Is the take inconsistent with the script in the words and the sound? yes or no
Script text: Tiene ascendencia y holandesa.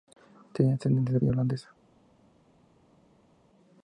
no